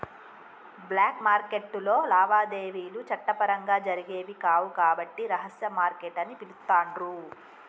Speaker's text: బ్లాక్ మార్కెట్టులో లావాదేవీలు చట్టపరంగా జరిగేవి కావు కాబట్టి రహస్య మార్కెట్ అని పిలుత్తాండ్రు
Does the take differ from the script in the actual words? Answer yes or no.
no